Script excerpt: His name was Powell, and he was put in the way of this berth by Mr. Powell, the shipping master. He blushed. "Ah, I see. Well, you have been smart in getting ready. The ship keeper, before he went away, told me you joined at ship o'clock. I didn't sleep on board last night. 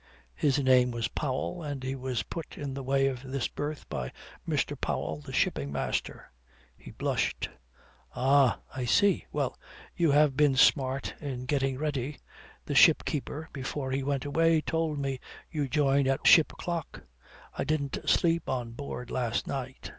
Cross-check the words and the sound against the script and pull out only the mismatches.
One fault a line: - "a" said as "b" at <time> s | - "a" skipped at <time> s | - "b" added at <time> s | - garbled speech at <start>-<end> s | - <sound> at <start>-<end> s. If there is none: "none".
none